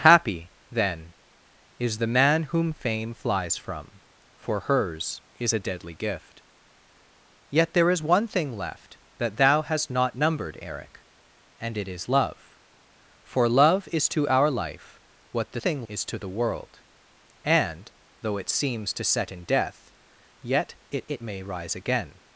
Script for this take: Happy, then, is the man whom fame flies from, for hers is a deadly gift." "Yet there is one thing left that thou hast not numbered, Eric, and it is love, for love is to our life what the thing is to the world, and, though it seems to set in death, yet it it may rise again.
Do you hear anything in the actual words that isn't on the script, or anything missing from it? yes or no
no